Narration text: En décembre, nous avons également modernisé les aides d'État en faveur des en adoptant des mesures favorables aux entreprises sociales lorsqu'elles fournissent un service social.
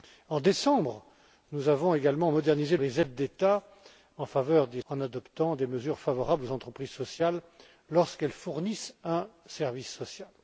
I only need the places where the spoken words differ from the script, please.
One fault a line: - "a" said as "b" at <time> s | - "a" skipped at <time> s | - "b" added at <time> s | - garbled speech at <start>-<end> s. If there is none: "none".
none